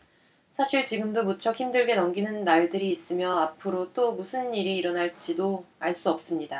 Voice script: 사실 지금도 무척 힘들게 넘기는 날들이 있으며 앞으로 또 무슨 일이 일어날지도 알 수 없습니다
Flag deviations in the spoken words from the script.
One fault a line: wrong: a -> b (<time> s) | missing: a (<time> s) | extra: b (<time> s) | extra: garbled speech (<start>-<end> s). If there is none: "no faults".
no faults